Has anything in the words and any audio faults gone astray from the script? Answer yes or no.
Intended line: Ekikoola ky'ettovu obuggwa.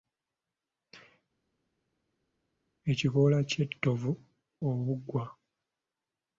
no